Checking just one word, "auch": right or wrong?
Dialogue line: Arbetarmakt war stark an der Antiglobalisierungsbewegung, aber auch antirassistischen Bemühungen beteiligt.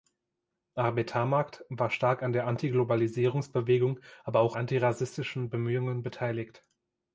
right